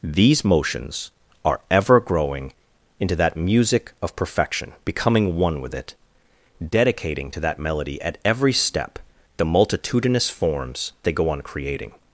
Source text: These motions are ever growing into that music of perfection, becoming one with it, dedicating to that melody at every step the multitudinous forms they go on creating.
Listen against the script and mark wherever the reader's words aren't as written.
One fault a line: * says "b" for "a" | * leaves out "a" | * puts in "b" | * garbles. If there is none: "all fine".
all fine